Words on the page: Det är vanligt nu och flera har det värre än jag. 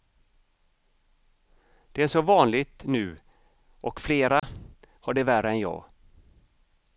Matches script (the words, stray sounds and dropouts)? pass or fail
fail